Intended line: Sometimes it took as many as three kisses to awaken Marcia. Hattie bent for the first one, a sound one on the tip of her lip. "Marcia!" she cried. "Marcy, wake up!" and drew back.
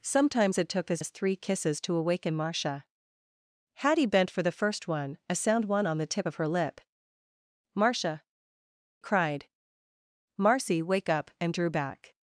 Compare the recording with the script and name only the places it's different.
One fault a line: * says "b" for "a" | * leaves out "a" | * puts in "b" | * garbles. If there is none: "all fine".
* leaves out "many"
* leaves out "she"